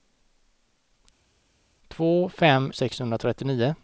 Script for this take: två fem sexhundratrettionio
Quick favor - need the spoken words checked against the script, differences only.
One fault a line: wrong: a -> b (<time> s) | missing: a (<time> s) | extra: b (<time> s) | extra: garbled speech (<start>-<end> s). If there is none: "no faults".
no faults